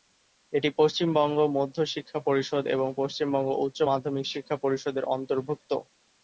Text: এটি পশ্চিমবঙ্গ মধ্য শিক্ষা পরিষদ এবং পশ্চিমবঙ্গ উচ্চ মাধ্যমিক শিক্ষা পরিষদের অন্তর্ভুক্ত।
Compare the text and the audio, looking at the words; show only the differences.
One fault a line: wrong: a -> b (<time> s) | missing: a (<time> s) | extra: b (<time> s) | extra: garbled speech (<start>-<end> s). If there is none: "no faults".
no faults